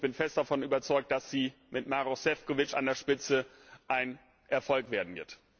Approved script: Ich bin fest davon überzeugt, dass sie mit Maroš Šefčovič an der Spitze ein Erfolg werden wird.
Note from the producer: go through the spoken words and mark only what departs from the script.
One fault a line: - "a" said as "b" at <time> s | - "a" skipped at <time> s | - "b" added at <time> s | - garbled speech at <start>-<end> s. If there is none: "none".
none